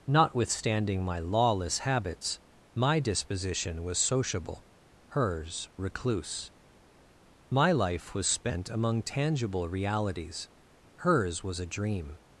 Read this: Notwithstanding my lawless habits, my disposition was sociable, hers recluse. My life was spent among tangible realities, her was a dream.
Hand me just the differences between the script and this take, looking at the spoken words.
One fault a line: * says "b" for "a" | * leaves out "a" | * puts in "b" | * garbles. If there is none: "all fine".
* says "hers" for "her"